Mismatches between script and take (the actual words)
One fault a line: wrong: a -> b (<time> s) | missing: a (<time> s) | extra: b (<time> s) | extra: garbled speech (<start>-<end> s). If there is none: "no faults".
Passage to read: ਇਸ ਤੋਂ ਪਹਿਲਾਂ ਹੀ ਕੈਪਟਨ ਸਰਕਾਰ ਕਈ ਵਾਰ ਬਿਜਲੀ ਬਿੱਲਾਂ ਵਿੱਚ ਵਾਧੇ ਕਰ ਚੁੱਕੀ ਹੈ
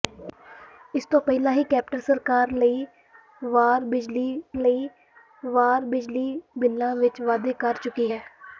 extra: ਕਈ ਵਾਰ ਬਿਜਲੀ (4.6 s)